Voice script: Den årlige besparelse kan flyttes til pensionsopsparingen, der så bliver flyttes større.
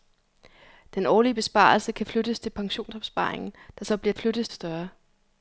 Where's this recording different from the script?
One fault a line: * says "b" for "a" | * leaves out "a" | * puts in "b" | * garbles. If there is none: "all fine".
all fine